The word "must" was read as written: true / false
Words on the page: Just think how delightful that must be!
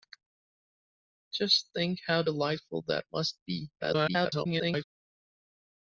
true